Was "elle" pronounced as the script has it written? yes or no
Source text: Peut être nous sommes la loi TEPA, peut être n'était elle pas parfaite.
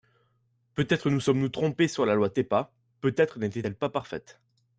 yes